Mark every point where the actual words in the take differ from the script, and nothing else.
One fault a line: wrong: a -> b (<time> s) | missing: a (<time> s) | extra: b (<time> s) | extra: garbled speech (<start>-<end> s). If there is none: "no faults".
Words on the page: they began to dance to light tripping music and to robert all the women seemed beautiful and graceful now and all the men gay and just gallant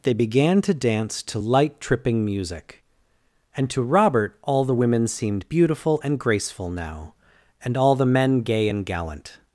missing: just (8.8 s)